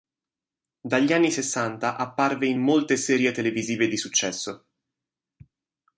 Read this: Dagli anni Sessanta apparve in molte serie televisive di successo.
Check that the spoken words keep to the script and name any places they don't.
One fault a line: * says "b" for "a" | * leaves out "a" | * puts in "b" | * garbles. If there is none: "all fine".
all fine